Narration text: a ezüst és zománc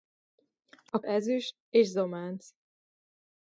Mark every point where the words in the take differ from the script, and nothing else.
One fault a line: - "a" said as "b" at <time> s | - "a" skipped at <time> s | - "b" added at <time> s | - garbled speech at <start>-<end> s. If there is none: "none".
none